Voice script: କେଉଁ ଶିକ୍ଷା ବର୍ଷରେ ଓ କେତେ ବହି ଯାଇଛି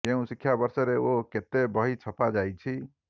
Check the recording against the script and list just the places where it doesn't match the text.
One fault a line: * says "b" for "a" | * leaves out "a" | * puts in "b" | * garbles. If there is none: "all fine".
* puts in "ଛପା"